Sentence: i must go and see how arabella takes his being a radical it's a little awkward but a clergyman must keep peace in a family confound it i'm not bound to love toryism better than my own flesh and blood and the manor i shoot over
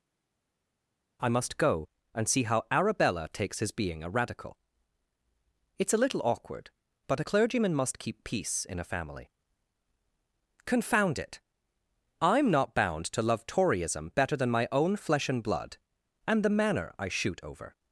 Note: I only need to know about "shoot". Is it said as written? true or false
true